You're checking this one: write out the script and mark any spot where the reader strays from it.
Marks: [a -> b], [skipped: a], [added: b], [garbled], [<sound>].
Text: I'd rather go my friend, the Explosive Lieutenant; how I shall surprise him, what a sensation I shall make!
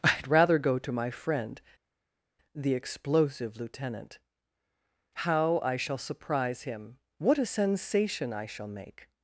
I'd rather go [added: to] my friend, the Explosive Lieutenant; how I shall surprise him, what a sensation I shall make!